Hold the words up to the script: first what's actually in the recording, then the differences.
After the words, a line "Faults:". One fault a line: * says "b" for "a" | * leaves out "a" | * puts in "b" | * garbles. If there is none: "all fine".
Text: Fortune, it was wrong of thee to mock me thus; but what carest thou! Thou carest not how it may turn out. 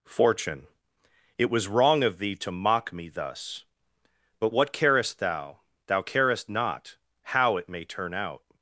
Fortune, it was wrong of thee to mock me thus; but what carest thou! Thou carest not how it may turn out.
Faults:
all fine